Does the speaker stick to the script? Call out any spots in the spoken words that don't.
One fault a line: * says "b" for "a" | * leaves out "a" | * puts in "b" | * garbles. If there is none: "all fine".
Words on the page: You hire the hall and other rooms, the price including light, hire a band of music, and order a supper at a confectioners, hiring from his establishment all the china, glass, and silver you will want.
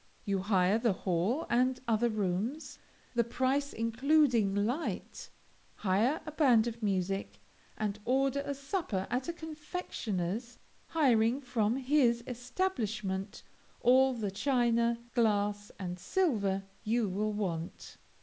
all fine